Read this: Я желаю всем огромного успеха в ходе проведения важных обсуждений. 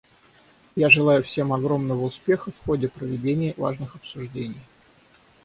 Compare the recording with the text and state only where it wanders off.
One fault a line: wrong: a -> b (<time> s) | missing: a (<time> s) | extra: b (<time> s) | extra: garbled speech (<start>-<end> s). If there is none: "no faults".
no faults